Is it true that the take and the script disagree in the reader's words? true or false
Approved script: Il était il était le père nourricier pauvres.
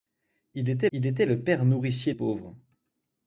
false